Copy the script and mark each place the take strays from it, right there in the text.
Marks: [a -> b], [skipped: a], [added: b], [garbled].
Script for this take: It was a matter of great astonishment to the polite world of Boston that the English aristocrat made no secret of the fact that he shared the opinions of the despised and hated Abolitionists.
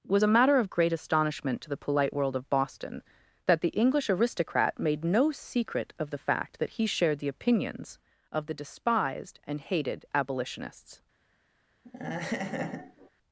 [skipped: It] was a matter of great astonishment to the polite world of Boston that the English aristocrat made no secret of the fact that he shared the opinions of the despised and hated Abolitionists.